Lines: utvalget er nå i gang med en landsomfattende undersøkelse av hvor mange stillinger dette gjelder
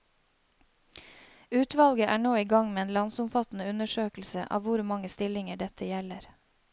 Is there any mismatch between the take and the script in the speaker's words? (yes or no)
no